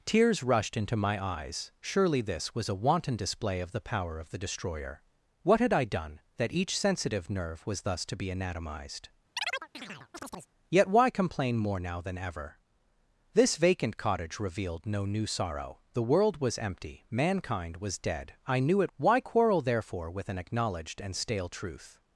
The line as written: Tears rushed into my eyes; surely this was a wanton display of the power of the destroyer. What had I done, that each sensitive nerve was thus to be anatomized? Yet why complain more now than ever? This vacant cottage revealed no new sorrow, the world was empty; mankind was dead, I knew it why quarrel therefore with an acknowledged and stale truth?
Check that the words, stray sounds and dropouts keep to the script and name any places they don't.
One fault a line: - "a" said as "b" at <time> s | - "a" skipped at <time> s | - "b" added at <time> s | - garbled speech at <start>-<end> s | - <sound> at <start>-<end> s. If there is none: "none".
- chirp at 9.4-10.5 s